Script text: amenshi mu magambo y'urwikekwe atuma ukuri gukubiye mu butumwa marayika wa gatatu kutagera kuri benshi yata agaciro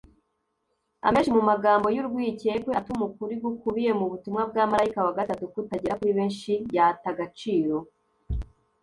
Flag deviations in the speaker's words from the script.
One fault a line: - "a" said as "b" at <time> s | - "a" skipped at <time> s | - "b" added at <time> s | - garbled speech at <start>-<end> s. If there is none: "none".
- "bwa" added at 4.5 s